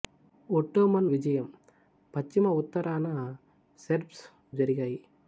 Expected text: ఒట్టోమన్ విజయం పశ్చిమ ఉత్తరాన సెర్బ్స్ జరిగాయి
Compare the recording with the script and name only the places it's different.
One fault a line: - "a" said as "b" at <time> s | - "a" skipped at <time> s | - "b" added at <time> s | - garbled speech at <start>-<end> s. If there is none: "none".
none